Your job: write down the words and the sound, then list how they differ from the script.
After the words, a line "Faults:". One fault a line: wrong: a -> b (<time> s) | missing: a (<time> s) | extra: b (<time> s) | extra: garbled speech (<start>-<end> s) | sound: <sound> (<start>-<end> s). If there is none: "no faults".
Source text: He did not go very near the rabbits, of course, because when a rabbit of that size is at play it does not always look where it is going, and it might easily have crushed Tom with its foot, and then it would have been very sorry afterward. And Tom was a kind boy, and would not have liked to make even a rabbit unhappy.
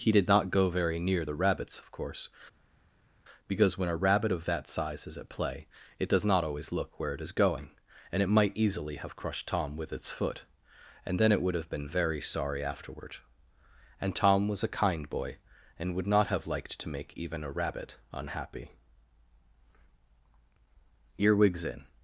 He did not go very near the rabbits, of course, because when a rabbit of that size is at play it does not always look where it is going, and it might easily have crushed Tom with its foot, and then it would have been very sorry afterward. And Tom was a kind boy, and would not have liked to make even a rabbit unhappy. Earwigs in
Faults:
extra: Earwigs in (21.2 s)